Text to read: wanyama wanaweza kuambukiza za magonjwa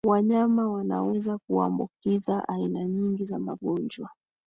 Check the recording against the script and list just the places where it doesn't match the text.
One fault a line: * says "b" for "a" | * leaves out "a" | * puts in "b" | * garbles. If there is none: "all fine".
* puts in "aina nyingi"